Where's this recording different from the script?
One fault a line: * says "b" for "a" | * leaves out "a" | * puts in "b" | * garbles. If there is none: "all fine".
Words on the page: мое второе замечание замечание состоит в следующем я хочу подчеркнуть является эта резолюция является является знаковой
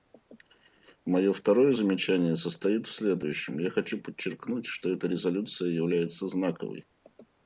* leaves out "замечание"
* says "что" for "является"
* leaves out "является"